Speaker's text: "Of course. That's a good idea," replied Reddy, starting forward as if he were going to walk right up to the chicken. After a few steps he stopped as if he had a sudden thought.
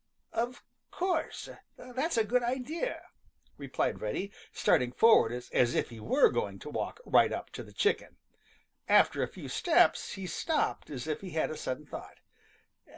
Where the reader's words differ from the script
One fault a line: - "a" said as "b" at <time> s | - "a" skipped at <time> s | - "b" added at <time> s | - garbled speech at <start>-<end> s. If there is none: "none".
none